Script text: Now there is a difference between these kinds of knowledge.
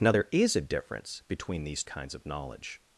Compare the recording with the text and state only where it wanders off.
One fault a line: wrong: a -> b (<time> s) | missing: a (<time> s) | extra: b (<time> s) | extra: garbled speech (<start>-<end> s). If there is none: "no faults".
no faults